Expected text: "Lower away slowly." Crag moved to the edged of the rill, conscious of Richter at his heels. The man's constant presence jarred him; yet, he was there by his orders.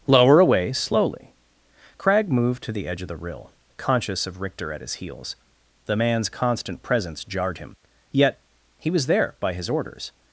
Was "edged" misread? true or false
true